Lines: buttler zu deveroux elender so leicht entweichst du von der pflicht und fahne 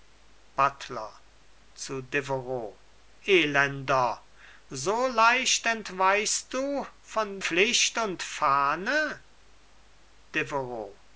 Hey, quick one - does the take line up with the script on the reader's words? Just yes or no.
no